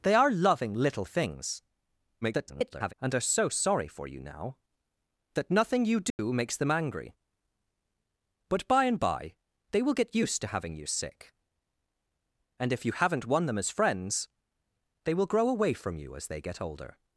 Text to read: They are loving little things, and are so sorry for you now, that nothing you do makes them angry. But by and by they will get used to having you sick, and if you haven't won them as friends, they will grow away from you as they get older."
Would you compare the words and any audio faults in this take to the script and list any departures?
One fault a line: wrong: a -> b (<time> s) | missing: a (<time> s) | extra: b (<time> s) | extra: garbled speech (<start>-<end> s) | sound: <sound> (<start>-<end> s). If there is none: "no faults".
extra: garbled speech (2.2-2.9 s)
sound: dropout (6.1-6.2 s)